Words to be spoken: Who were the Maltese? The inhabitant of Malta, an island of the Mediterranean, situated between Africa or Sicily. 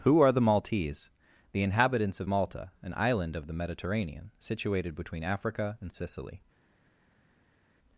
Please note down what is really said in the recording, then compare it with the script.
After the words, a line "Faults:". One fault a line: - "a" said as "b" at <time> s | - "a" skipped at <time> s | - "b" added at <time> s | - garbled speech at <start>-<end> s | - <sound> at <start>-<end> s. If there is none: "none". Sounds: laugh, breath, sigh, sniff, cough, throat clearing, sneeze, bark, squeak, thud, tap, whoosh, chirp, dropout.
Who are the Maltese? The inhabitants of Malta, an island of the Mediterranean, situated between Africa and Sicily.
Faults:
- "were" said as "are" at 0.2 s
- "inhabitant" said as "inhabitants" at 1.6 s
- "or" said as "and" at 5.8 s